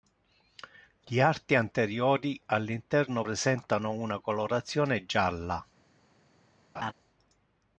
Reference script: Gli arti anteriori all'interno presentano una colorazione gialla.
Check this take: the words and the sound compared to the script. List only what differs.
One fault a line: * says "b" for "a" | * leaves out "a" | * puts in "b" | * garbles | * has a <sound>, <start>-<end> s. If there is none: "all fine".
* has a laugh, 6.8-6.9 s